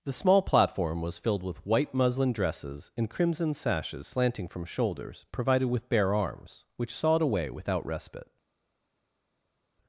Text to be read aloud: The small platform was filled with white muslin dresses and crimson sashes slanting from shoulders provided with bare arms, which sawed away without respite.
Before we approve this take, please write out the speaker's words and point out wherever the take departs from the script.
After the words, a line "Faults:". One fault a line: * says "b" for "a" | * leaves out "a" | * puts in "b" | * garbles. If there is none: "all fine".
The small platform was filled with white muslin dresses and crimson sashes slanting from shoulders provided with bare arms, which sawed away without respite.
Faults:
all fine